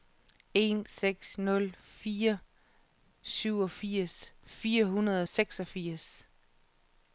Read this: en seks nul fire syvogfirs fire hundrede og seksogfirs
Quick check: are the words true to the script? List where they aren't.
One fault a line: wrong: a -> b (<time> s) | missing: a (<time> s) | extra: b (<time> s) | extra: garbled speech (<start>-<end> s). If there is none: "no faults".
no faults